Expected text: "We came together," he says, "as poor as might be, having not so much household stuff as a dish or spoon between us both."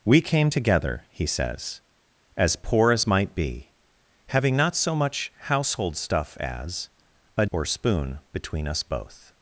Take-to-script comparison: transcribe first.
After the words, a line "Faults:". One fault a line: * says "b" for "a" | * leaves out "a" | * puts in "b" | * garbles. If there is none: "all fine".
"We came together," he says, "as poor as might be, having not so much household stuff as a or spoon between us both."
Faults:
* leaves out "dish"